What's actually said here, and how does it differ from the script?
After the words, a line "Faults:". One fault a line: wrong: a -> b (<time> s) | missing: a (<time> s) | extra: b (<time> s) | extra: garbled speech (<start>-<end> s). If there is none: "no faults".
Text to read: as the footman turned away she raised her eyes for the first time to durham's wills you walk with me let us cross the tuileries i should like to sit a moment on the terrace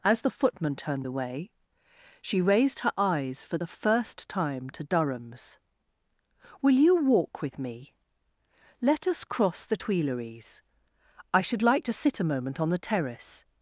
as the footman turned away she raised her eyes for the first time to durham's will you walk with me let us cross the tuileries i should like to sit a moment on the terrace
Faults:
wrong: wills -> will (6.6 s)